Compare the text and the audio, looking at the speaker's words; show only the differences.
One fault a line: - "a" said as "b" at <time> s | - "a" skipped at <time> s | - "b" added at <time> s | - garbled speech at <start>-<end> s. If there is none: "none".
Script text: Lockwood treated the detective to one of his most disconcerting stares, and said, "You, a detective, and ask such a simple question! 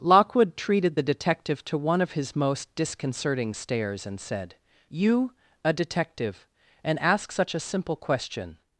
none